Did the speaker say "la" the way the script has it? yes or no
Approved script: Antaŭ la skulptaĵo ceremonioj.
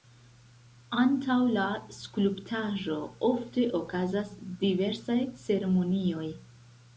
yes